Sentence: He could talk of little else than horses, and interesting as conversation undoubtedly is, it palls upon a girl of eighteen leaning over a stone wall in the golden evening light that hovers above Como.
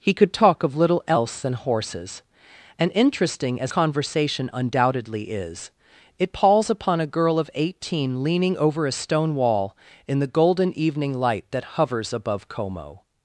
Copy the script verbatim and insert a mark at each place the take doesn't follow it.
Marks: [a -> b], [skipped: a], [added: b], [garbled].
He could talk of little else than horses, and interesting as conversation undoubtedly is, it palls upon a girl of eighteen leaning over a stone wall in the golden evening light that hovers above Como.